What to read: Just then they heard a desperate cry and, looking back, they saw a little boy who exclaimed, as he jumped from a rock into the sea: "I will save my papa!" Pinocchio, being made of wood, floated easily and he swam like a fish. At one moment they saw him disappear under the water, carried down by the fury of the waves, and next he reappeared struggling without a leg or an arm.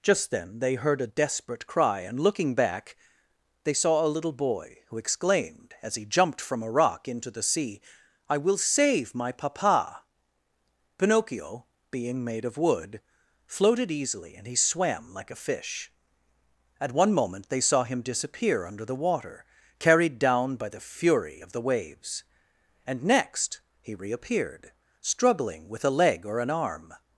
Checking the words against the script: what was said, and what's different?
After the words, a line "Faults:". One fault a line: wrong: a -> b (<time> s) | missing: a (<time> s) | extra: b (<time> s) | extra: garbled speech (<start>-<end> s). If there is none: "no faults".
Just then they heard a desperate cry and, looking back, they saw a little boy who exclaimed, as he jumped from a rock into the sea: "I will save my papa!" Pinocchio, being made of wood, floated easily and he swam like a fish. At one moment they saw him disappear under the water, carried down by the fury of the waves, and next he reappeared struggling with a leg or an arm.
Faults:
wrong: without -> with (25.7 s)